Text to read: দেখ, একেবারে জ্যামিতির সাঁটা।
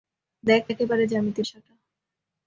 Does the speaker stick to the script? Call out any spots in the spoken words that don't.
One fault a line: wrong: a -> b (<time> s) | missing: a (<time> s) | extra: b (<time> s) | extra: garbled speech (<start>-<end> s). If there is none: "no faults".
no faults